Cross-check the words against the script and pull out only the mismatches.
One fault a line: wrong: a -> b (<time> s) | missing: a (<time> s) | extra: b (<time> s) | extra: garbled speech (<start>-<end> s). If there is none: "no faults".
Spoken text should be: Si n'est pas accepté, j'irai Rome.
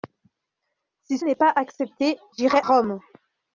no faults